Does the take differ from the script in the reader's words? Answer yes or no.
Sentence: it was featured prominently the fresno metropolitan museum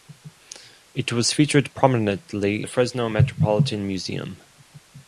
no